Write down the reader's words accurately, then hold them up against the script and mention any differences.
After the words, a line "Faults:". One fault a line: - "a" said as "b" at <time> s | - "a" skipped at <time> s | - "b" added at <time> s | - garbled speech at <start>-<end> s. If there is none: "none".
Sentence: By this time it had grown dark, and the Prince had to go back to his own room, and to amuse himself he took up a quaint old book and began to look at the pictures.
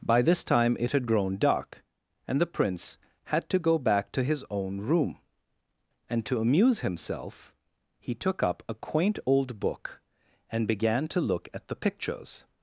By this time it had grown dark, and the Prince had to go back to his own room, and to amuse himself he took up a quaint old book and began to look at the pictures.
Faults:
none